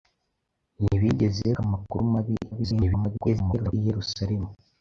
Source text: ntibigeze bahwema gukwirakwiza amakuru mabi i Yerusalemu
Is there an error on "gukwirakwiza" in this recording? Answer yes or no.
yes